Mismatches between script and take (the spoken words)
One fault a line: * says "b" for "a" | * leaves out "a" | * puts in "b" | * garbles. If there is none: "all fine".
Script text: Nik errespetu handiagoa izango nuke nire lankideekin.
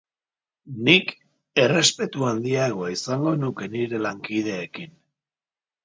all fine